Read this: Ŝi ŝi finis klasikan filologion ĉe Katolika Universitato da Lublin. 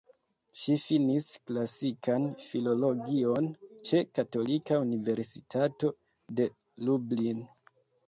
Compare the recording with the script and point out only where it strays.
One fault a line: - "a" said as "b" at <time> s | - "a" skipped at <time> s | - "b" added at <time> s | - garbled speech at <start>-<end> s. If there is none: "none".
- "ŝi" skipped at 0.8 s
- "da" said as "de" at 6.4 s